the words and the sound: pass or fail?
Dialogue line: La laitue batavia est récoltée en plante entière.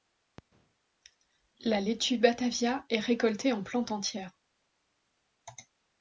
pass